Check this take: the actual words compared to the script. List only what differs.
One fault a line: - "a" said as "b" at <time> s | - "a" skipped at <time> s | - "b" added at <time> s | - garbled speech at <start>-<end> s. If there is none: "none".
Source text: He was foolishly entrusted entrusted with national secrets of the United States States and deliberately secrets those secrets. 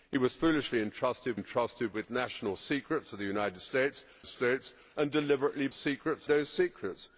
none